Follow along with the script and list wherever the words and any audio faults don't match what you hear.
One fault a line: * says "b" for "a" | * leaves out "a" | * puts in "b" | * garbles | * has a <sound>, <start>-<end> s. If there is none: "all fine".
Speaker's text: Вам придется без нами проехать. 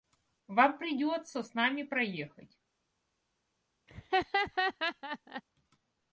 * says "с" for "без"
* has a laugh, 3.9-5.4 s